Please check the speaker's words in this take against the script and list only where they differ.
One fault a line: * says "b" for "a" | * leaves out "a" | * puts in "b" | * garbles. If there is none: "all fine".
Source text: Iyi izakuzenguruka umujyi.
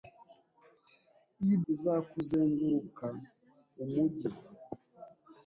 all fine